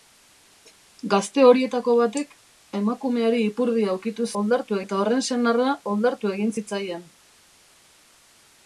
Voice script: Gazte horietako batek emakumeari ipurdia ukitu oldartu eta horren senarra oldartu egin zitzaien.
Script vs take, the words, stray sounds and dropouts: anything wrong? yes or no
no